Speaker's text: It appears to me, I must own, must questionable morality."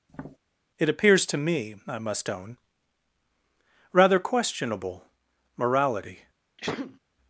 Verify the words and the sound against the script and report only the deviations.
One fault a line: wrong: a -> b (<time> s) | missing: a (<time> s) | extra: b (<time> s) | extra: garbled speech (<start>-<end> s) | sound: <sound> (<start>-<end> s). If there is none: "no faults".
sound: tap (0.1-0.4 s)
wrong: must -> rather (3.9 s)
sound: sneeze (6.6-7.0 s)